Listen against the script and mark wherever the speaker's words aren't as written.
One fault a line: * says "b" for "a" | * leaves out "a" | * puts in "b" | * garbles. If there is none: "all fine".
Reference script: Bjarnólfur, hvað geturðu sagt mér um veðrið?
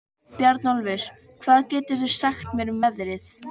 all fine